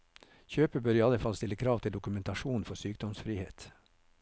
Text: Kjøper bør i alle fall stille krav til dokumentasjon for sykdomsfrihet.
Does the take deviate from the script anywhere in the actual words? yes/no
no